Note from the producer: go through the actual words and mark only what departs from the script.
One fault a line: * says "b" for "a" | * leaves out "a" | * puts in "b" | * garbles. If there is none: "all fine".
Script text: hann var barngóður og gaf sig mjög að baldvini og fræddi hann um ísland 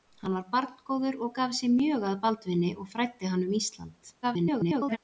* garbles